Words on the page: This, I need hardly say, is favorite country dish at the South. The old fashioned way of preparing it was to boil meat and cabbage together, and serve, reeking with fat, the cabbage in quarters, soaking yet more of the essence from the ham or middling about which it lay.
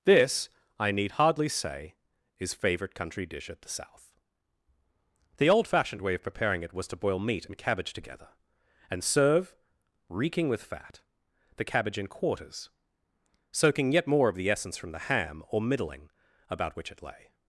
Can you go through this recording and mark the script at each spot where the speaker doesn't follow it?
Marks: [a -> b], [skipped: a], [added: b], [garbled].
This, I need hardly say, is favorite country dish at the South. The old fashioned way of preparing it was to boil meat and cabbage together, and serve, reeking with fat, the cabbage in quarters, soaking yet more of the essence from the ham or middling about which it lay.